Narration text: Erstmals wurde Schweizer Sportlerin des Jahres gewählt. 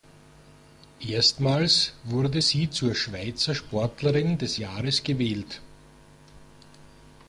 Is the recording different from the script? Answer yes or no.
yes